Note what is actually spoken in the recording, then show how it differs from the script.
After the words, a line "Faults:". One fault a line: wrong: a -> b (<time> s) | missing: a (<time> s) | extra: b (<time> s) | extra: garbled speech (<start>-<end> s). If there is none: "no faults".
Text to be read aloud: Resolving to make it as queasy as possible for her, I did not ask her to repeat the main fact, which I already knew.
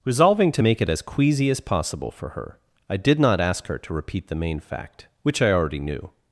Resolving to make it as queasy as possible for her, I did not ask her to repeat the main fact, which I already knew.
Faults:
no faults